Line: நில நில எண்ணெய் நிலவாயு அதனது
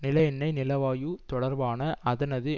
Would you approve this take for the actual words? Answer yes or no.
no